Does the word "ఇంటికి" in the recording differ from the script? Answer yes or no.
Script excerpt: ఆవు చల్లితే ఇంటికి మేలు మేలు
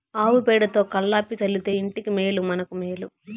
no